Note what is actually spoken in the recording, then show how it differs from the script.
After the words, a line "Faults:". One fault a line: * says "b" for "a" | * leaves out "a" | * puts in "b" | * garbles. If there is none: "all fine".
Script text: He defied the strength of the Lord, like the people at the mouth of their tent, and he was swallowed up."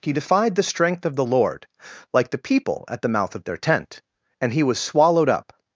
He defied the strength of the Lord, like the people at the mouth of their tent, and he was swallowed up."
Faults:
all fine